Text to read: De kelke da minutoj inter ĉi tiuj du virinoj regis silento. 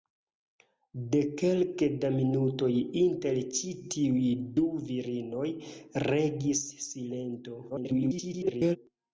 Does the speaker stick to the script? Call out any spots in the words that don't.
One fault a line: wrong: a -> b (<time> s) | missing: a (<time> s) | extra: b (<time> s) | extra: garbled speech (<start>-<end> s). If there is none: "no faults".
extra: garbled speech (7.7-8.8 s)